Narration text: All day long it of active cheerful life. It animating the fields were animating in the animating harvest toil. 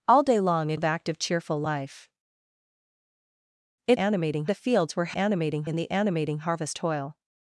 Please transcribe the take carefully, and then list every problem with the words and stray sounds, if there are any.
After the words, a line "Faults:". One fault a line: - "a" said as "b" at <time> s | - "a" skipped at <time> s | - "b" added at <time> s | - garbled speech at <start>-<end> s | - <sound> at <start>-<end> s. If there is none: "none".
All day long it of active cheerful life. It animating the fields were animating in the animating harvest toil.
Faults:
none